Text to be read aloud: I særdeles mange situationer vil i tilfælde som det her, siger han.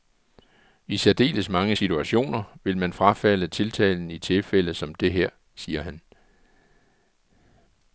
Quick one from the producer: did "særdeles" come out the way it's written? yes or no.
yes